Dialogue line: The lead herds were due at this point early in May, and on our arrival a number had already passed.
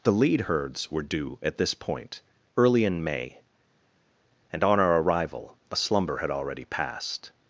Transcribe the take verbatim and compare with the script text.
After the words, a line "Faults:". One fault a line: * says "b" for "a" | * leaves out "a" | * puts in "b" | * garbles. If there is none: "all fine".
The lead herds were due at this point early in May, and on our arrival a slumber had already passed.
Faults:
* says "slumber" for "number"